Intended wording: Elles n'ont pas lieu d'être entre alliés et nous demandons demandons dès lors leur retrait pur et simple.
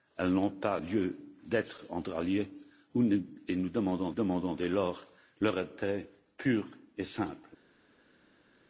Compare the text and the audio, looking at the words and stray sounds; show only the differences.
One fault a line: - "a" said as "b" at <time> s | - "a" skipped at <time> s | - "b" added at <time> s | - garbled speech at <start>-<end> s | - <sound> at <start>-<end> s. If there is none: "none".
none